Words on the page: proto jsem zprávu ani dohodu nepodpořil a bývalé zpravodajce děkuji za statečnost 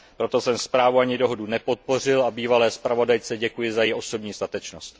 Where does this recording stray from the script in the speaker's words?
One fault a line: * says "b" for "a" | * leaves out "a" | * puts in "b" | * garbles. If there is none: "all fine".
* puts in "její osobní"